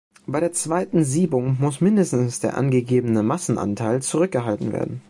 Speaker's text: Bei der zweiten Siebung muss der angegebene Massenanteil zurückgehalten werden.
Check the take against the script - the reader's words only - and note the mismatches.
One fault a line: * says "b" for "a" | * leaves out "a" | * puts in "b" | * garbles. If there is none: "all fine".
* puts in "mindestens"